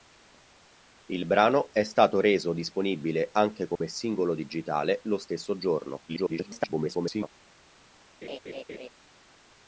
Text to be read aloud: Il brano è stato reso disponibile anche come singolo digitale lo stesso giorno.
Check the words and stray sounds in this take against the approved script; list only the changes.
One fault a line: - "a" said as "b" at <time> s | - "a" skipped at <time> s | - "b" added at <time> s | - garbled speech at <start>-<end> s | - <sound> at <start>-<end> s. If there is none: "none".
- dropout at 3.8-3.8 s
- garbled speech at 6.1-7.3 s
- laugh at 8.2-8.9 s